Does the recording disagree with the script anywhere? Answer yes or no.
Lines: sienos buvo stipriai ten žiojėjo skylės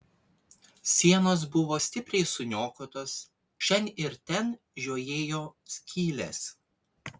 yes